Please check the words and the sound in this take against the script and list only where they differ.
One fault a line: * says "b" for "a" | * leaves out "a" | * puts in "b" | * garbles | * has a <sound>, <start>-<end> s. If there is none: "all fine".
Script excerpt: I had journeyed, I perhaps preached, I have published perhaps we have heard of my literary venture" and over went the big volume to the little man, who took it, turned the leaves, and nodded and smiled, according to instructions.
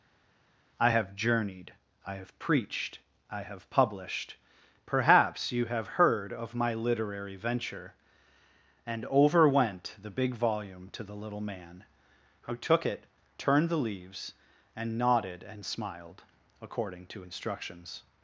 * says "have" for "had"
* says "have" for "perhaps"
* says "you" for "we"